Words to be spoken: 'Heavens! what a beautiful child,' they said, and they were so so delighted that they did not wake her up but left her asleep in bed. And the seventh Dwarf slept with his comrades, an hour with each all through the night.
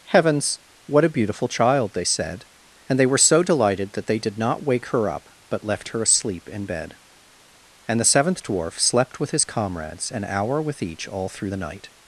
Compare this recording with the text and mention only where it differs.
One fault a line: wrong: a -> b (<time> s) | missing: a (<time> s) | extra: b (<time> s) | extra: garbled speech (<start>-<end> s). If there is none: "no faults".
missing: so (3.4 s)